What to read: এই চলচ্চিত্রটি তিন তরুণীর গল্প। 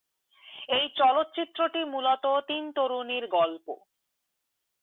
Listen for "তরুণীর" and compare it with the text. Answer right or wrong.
right